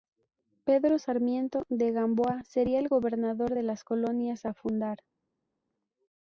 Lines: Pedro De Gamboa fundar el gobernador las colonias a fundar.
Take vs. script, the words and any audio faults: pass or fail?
fail